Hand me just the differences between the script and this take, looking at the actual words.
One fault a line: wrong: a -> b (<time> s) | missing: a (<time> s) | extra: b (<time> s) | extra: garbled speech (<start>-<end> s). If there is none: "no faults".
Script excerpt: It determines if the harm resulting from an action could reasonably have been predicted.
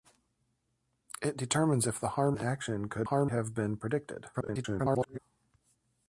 missing: resulting from (2.4 s)
wrong: reasonably -> harm (3.0 s)
extra: garbled speech (4.3-5.2 s)